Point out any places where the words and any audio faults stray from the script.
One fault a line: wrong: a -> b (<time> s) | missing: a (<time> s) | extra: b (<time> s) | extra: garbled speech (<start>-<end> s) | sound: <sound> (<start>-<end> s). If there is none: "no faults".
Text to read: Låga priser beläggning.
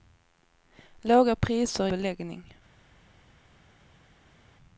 no faults